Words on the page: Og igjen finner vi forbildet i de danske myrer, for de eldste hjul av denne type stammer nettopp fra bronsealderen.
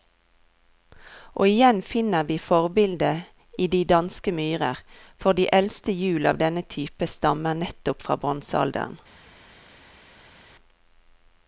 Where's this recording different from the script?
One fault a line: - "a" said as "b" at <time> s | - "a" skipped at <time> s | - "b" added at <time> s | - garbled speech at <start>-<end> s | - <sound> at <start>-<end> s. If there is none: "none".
none